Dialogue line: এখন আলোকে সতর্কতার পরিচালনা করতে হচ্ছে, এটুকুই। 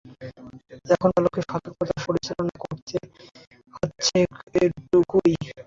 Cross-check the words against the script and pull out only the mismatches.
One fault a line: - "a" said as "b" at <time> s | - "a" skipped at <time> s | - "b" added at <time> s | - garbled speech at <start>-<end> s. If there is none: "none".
none